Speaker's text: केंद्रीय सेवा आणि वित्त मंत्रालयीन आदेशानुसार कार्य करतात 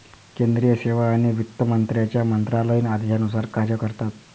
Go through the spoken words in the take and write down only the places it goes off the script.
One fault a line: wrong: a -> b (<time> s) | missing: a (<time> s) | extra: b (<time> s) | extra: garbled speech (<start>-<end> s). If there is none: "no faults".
extra: मंत्र्यांच्या (1.6 s)